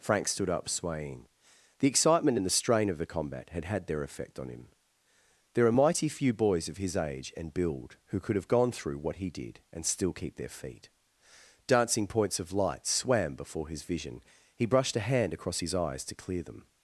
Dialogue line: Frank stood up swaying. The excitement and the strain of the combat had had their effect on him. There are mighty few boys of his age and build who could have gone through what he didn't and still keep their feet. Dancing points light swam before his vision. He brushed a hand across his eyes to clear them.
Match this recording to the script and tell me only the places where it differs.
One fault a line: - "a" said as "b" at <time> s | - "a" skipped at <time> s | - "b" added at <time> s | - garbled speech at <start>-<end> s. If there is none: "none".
- "didn't" said as "did" at 9.3 s
- "of" added at 12.4 s